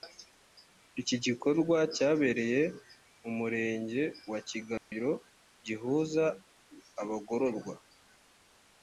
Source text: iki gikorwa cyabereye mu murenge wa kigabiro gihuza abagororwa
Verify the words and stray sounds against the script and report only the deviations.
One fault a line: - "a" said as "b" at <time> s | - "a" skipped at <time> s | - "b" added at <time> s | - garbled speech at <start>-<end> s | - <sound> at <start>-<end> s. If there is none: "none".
- dropout at 4.8-4.9 s